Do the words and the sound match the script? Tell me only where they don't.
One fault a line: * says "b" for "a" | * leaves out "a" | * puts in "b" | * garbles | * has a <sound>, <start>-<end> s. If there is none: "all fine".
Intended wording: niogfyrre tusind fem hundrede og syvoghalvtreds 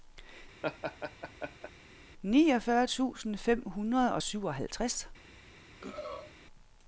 * has a laugh, 0.6-1.7 s
* has a throat clearing, 5.8-6.3 s